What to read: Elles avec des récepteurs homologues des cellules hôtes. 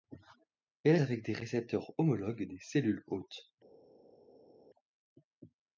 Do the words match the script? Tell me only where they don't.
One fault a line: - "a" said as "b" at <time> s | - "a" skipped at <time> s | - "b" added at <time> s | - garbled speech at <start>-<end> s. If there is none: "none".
none